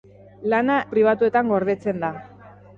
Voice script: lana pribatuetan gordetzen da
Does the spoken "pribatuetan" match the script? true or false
true